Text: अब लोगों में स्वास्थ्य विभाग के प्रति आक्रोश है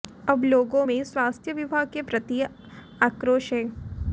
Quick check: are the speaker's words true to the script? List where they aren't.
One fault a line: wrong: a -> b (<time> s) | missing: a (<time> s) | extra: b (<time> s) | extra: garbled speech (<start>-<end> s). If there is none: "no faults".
no faults